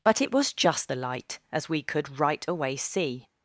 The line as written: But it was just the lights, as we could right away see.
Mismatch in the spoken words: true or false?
true